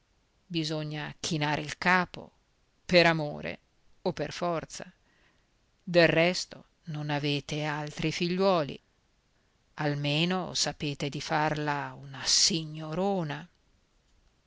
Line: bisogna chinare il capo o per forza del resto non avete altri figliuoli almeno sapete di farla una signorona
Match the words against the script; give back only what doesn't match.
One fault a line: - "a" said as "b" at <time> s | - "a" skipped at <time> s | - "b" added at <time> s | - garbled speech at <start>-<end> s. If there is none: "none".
- "per amore" added at 2.8 s